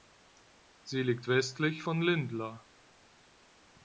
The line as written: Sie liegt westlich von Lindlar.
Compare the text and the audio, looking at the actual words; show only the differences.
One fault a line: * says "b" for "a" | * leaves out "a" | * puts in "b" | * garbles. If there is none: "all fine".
all fine